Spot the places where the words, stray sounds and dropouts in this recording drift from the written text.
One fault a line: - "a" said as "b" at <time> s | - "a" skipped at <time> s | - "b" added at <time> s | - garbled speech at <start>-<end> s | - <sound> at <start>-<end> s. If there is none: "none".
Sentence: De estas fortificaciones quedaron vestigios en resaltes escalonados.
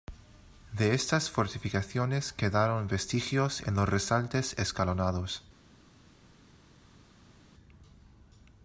- "los" added at 3.8 s